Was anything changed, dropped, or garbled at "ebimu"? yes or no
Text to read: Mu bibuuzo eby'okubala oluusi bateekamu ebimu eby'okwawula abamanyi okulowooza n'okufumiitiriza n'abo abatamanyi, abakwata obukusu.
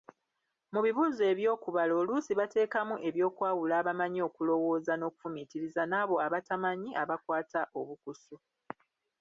yes